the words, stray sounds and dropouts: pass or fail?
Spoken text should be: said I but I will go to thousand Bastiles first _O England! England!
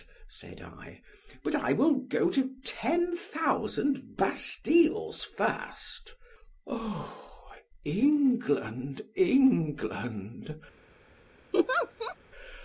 fail